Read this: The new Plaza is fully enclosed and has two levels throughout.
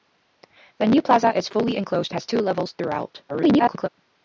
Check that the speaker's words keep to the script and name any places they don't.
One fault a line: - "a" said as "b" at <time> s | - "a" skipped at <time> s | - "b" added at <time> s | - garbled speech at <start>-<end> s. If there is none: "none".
- "and" skipped at 2.1 s
- garbled speech at 3.3-3.9 s